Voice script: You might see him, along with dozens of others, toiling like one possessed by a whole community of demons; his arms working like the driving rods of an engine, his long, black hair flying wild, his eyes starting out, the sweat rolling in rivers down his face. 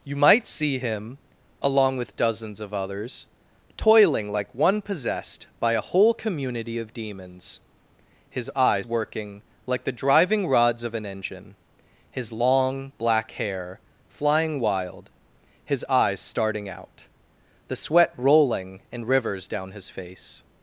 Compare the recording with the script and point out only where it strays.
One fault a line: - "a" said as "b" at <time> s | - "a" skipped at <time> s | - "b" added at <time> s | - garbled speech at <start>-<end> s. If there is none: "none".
- "arms" said as "eyes" at 8.5 s